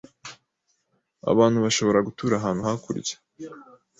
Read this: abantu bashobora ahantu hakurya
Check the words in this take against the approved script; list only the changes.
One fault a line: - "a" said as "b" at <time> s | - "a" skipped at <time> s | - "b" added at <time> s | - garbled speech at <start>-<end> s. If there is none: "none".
- "gutura" added at 2.1 s